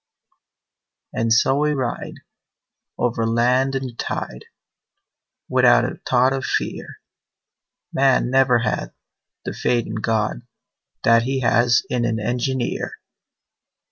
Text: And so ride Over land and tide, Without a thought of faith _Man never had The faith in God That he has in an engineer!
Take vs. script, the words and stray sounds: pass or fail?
fail